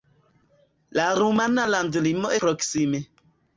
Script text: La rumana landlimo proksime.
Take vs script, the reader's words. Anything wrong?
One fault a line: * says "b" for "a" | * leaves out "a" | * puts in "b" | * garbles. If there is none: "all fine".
all fine